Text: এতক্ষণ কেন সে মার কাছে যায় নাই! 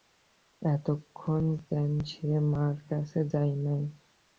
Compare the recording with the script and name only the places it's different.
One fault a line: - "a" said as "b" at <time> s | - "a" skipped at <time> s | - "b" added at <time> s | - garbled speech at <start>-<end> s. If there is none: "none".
none